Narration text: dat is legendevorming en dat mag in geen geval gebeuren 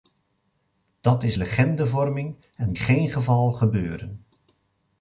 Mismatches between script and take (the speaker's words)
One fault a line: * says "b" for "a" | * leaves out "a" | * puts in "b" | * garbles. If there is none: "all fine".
* leaves out "dat mag in"